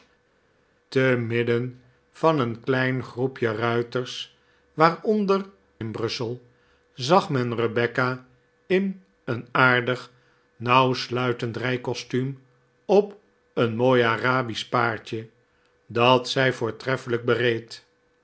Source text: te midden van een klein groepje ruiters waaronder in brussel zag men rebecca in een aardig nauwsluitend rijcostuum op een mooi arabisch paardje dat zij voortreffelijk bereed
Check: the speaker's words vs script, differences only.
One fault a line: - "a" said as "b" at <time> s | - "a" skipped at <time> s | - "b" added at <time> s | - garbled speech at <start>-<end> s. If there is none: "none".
none